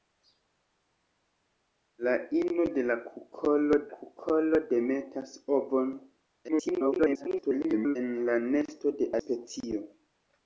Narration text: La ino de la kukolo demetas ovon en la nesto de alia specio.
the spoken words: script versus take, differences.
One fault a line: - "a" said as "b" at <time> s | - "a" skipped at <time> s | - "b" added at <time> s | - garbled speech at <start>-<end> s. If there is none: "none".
- "kukolo" added at 3.9 s
- garbled speech at 6.5-8.0 s
- "alia" skipped at 9.1 s